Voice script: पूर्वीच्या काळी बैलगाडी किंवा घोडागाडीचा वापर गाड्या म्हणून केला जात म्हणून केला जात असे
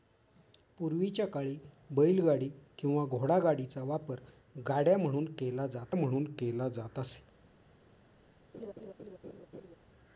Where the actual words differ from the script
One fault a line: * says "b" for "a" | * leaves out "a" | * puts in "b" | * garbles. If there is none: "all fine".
all fine